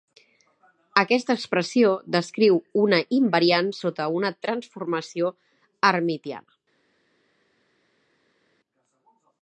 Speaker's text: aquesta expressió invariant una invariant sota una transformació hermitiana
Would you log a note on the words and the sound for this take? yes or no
yes